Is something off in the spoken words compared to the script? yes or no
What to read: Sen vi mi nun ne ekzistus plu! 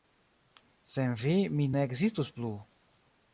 yes